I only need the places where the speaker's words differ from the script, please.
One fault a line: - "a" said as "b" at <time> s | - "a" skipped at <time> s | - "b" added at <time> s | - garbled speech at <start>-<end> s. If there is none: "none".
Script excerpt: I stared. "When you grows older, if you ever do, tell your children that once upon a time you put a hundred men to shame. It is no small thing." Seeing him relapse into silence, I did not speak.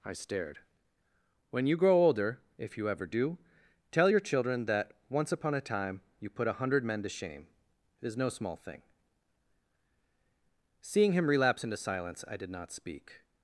- "grows" said as "grow" at 1.8 s